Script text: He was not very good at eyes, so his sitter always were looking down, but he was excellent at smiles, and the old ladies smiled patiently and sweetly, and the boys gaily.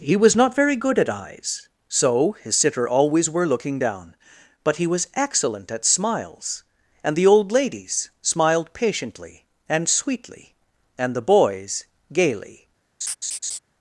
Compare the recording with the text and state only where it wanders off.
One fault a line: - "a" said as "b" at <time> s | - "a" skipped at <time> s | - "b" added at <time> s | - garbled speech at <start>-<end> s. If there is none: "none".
none